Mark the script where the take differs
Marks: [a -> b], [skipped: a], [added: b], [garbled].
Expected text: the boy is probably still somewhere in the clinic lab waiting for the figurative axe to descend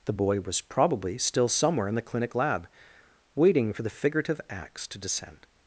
the boy [is -> was] probably still somewhere in the clinic lab waiting for the figurative axe to descend